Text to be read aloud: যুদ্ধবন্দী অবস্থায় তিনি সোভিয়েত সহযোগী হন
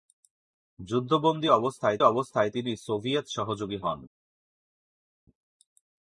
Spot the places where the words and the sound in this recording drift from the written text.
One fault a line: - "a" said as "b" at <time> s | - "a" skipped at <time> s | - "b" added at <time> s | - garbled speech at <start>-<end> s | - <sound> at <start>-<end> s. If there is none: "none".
- "অবস্থায়" added at 2.0 s